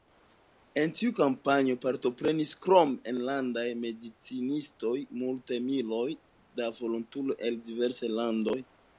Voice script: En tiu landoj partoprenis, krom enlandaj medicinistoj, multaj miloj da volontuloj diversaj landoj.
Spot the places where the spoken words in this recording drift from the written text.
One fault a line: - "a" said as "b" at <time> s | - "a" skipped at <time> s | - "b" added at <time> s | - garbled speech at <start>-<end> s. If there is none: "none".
- "landoj" said as "kampanjo" at 1.2 s
- "el" added at 7.5 s